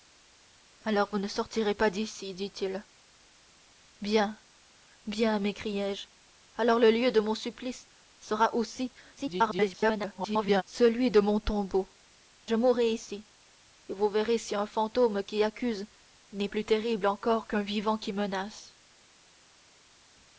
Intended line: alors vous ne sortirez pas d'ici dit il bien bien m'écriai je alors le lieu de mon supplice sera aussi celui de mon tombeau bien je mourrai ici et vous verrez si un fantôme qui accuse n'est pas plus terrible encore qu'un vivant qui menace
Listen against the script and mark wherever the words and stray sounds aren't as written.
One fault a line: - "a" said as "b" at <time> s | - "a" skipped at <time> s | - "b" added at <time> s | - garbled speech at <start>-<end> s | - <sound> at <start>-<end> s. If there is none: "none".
- garbled speech at 9.2-10.6 s
- "bien" skipped at 11.9 s
- "pas" skipped at 16.5 s